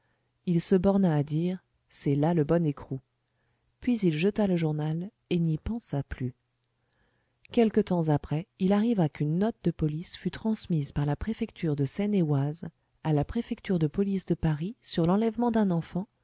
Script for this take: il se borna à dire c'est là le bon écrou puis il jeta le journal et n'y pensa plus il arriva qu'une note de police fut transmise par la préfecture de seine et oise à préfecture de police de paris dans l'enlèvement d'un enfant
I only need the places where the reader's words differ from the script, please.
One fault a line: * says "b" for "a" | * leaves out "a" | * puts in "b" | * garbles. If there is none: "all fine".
* puts in "quelque temps après"
* puts in "la"
* says "sur" for "dans"